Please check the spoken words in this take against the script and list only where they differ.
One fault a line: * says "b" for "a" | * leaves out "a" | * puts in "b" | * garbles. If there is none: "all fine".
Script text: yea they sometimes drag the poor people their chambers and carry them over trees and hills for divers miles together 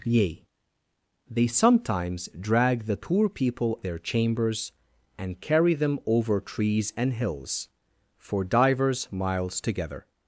all fine